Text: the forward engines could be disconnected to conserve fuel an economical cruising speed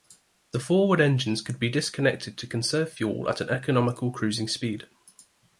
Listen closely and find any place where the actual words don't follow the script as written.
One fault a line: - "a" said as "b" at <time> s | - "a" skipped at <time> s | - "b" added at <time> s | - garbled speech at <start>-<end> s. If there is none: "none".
- "at" added at 3.3 s